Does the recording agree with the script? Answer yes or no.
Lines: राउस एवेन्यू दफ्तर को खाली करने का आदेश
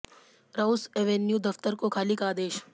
no